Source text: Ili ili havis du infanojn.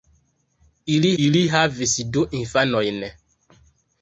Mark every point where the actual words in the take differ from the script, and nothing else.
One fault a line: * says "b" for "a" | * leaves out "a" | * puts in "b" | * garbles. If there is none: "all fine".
all fine